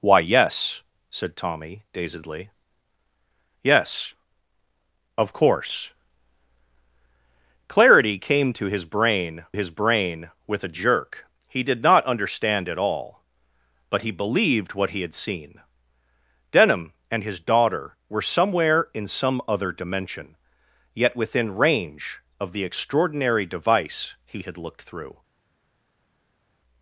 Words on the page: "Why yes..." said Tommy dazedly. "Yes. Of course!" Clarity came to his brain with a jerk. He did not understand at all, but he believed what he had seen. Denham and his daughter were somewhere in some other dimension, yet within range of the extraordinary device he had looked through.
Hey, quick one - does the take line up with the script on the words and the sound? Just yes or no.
no